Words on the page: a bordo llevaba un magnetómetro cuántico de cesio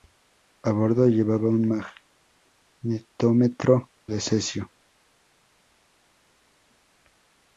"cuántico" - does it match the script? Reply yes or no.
no